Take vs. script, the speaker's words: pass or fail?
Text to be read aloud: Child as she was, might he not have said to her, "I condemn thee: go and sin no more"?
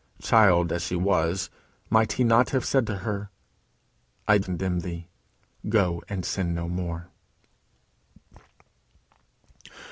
pass